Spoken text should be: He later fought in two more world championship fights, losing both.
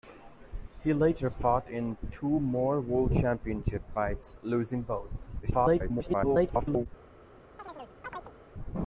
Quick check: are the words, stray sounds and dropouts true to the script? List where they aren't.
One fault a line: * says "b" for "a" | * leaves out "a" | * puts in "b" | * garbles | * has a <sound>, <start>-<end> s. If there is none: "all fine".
* garbles
* has a chirp, 7.6-8.4 s